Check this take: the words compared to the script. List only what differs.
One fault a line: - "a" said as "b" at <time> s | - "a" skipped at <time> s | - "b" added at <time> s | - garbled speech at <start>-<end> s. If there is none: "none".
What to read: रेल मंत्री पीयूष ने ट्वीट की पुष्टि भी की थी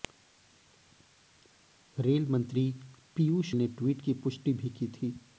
none